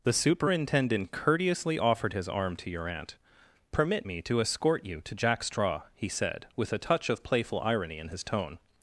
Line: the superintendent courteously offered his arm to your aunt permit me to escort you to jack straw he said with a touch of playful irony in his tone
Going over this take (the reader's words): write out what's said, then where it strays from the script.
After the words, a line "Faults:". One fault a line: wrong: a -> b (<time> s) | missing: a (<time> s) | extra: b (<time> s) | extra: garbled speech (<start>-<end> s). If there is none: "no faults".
the superintendent courteously offered his arm to your aunt permit me to escort you to jack straw he said with a touch of playful irony in his tone
Faults:
no faults